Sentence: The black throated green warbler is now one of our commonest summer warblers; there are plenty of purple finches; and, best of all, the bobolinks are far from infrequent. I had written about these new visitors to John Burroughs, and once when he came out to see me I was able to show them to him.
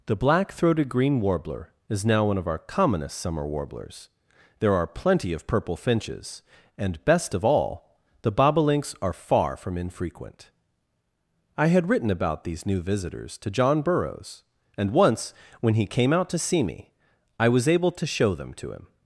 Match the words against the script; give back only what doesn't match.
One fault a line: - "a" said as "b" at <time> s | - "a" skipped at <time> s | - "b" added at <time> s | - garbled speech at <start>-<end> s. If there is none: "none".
none